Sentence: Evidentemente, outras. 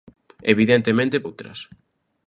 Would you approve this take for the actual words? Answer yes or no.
yes